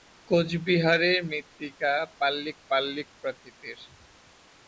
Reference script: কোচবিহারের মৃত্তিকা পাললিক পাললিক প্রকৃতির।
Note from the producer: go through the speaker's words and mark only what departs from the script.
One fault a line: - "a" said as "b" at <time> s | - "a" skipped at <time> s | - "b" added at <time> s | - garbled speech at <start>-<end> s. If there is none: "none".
none